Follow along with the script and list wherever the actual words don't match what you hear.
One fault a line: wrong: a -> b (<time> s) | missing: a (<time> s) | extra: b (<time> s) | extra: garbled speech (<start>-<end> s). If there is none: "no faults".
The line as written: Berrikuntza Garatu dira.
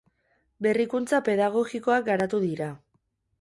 extra: Pedagogikoak (1.3 s)